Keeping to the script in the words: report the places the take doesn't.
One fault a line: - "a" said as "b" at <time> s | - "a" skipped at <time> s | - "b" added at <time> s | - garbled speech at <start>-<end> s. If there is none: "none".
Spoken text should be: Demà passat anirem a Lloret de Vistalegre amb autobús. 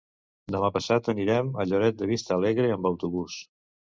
none